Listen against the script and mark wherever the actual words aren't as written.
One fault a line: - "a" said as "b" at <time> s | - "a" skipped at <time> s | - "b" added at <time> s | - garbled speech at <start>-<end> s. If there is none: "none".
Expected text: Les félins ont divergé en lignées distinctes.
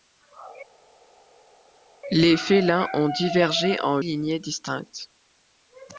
none